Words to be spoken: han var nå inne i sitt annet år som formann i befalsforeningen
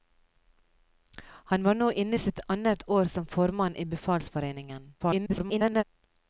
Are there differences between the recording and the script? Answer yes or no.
yes